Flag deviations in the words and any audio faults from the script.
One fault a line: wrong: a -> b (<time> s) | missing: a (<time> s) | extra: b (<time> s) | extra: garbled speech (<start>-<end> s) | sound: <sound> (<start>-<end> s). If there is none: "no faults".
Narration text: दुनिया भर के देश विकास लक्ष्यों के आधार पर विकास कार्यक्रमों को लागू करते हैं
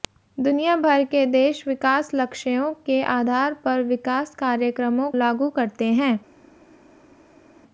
missing: को (5.1 s)